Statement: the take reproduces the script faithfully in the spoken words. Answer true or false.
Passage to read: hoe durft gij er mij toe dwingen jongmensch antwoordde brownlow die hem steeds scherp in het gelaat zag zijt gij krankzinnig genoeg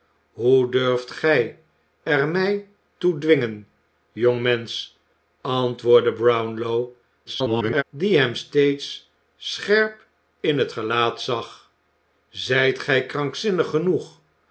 false